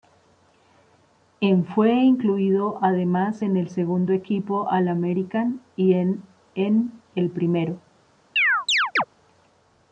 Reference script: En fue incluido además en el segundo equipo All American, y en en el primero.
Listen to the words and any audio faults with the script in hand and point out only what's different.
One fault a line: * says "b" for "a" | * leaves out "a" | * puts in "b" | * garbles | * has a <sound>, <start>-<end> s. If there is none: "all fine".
* has a chirp, 8.4-9.0 s